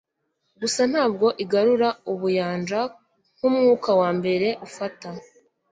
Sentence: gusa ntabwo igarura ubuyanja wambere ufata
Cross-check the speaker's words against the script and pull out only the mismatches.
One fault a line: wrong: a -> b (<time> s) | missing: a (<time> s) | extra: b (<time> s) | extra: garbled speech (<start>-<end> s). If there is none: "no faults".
extra: nkumwuka (3.4 s)